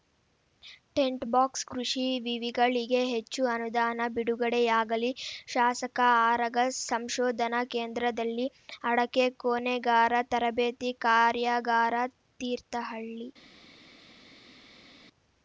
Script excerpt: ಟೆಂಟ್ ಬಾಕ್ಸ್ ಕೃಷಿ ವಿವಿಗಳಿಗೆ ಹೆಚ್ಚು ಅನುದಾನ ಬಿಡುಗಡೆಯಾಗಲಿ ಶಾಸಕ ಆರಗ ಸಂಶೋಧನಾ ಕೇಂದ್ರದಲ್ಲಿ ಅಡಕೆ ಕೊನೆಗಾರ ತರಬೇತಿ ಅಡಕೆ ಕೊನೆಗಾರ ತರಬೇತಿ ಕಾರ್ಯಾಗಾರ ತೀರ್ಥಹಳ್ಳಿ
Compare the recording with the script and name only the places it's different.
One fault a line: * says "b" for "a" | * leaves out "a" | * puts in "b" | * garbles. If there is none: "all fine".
* leaves out "ಅಡಕೆ ಕೊನೆಗಾರ ತರಬೇತಿ"